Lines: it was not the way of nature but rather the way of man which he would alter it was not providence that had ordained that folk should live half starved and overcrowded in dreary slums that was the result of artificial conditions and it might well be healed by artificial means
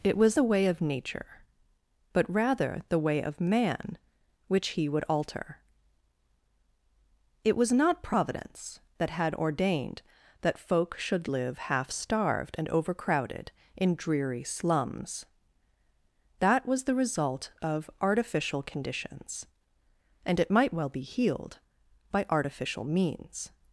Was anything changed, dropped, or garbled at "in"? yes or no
no